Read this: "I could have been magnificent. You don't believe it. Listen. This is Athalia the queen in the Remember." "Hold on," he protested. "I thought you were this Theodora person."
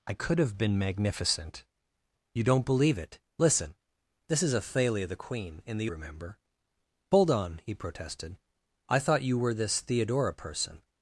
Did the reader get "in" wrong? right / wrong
right